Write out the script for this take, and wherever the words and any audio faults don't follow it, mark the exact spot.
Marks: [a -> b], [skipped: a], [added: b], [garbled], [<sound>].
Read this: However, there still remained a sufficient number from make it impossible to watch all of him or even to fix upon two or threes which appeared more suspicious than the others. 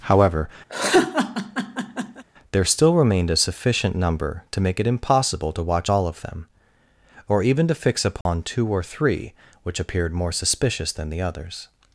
However, [laugh] there still remained a sufficient number [from -> to] make it impossible to watch all of [him -> them] or even to fix upon [dropout] two or [threes -> three] which appeared more suspicious than the others.